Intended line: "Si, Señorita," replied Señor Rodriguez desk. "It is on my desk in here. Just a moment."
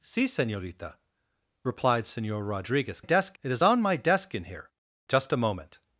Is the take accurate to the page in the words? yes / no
yes